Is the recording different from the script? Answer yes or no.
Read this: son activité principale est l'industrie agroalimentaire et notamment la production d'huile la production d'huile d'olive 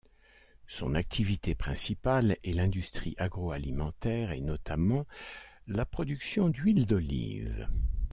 yes